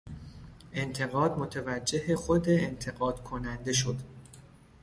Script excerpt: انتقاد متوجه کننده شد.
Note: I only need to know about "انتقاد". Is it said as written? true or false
true